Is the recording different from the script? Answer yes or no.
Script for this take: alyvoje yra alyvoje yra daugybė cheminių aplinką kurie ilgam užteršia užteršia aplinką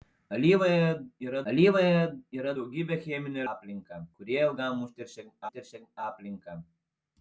no